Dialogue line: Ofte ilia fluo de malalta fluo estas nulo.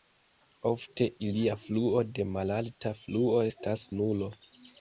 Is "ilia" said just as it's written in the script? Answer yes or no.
yes